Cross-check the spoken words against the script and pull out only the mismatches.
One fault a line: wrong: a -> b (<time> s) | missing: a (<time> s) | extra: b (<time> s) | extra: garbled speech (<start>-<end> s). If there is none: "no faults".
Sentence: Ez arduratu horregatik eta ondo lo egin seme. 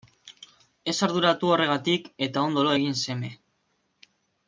no faults